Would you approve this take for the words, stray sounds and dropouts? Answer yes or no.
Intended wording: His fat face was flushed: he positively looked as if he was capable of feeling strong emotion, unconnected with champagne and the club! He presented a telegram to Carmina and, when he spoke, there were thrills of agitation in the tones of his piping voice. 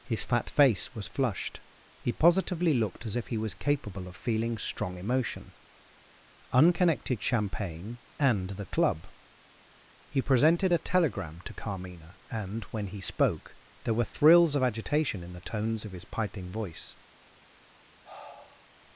no